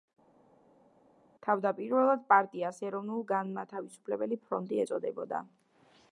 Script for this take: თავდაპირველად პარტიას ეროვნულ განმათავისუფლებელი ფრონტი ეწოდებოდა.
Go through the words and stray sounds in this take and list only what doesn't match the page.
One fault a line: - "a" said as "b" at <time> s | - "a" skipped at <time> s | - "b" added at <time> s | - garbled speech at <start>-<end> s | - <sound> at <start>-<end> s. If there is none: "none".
none